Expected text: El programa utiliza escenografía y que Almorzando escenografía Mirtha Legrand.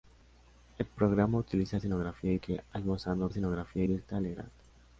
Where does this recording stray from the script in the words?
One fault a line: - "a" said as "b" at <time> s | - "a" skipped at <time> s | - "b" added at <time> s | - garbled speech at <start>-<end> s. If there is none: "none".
none